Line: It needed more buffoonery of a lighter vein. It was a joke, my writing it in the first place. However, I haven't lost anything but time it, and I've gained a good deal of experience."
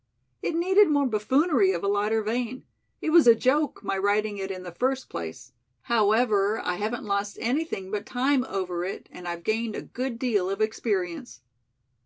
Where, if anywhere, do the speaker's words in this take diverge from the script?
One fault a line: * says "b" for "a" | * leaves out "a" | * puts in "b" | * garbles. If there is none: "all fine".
* puts in "over"